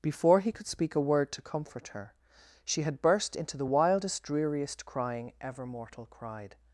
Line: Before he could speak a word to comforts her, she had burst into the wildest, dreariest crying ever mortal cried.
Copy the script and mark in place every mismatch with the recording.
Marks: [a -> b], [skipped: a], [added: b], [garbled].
Before he could speak a word to [comforts -> comfort] her, she had burst into the wildest, dreariest crying ever mortal cried.